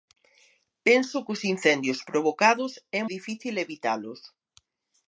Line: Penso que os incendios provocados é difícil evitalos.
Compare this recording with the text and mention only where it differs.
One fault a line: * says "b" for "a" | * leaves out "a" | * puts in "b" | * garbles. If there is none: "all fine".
all fine